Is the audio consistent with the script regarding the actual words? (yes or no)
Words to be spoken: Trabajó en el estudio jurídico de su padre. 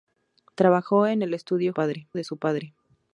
no